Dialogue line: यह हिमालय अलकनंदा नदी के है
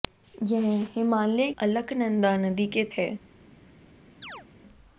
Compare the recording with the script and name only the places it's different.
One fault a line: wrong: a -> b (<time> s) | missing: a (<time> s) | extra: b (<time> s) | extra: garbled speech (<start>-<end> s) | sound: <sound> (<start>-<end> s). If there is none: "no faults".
sound: chirp (4.2-4.5 s)